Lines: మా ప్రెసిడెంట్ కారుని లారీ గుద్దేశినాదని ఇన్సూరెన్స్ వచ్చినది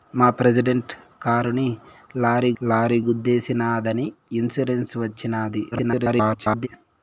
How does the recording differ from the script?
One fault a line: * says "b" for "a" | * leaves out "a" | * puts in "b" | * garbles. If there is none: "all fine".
* puts in "లారీ"
* garbles